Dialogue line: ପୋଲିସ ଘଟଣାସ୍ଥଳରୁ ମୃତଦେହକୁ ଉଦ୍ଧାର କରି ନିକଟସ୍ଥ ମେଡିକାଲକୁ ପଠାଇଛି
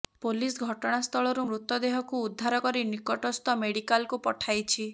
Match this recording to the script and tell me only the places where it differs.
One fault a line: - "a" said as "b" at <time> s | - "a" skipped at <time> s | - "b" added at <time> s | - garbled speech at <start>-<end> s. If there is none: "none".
none